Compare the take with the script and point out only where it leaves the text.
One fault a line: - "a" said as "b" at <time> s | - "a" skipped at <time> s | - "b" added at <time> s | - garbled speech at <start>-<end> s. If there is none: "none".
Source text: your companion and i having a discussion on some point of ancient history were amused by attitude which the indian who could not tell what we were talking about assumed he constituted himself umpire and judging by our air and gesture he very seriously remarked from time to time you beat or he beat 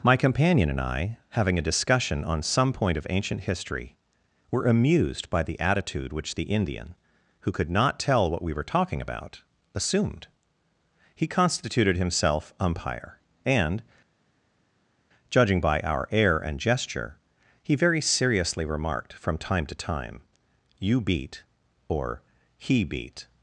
- "your" said as "my" at 0.0 s
- "the" added at 5.4 s